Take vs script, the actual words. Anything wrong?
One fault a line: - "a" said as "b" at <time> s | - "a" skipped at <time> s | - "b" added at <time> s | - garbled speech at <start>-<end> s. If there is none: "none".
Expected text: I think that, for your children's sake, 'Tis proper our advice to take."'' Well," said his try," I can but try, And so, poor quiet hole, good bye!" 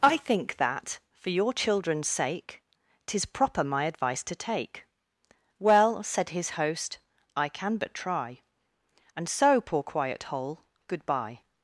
- "our" said as "my" at 3.6 s
- "try" said as "host" at 6.6 s